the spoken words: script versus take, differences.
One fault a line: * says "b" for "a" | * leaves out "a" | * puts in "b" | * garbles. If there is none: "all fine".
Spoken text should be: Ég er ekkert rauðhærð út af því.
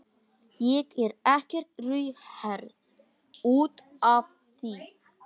all fine